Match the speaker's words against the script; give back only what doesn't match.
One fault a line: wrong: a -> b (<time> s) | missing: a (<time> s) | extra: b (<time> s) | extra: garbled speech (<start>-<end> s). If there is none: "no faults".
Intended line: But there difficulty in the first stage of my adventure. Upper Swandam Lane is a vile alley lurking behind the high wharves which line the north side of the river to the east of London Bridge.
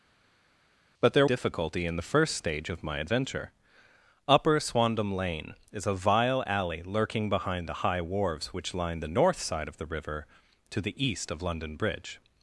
no faults